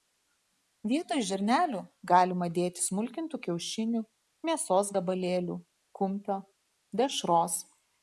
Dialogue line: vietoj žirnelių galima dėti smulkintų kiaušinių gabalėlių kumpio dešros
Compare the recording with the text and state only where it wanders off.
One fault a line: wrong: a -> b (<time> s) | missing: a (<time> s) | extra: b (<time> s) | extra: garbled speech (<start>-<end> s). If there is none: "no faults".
extra: mėsos (4.5 s)